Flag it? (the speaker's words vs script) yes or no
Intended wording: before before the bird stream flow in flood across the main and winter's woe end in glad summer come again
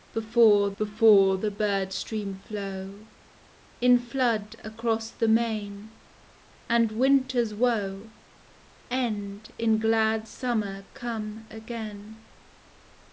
no